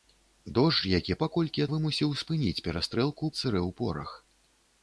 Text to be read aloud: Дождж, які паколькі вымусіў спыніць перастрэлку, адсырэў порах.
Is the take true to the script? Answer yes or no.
yes